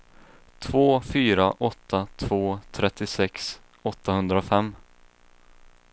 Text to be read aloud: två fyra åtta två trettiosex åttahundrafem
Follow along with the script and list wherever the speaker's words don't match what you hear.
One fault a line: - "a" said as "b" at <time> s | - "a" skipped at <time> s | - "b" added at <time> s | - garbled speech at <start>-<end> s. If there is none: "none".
none